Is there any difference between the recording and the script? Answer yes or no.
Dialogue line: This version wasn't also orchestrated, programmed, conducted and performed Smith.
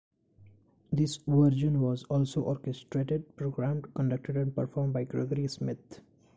yes